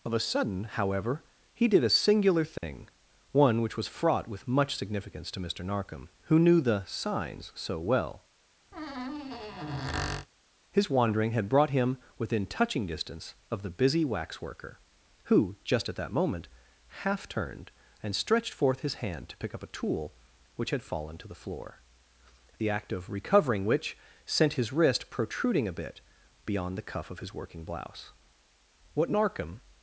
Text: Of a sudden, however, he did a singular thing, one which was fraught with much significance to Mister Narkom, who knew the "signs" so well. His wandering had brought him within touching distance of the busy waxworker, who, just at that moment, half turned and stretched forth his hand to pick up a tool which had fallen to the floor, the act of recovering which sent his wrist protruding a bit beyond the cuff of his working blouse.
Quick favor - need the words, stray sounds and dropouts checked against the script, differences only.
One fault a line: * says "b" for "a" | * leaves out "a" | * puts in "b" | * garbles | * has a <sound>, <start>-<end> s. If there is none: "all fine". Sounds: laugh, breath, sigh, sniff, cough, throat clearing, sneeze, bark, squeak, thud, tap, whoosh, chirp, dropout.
* has a dropout, 2.6-2.6 s
* has a squeak, 8.7-10.3 s
* puts in "What Narkom"